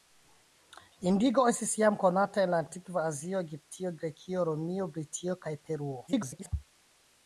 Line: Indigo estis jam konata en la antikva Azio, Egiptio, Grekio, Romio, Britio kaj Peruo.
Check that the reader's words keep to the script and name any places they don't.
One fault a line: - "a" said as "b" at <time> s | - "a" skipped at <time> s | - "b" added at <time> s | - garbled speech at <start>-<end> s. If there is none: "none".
- garbled speech at 6.1-6.5 s